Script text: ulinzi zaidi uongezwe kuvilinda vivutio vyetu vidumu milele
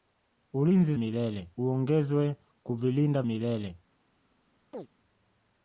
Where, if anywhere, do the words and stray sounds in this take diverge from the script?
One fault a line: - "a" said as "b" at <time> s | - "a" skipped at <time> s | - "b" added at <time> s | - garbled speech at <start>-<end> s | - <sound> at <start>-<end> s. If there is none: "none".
- "zaidi" said as "milele" at 1.0 s
- "vivutio vyetu vidumu" skipped at 3.2 s
- chirp at 4.7-4.9 s